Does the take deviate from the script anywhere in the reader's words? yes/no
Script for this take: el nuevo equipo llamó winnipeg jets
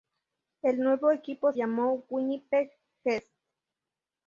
no